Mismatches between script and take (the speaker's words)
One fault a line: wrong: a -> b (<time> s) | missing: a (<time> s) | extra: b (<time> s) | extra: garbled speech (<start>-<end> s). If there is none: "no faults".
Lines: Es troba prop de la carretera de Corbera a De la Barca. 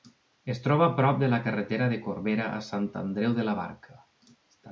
extra: Sant Andreu (2.7 s)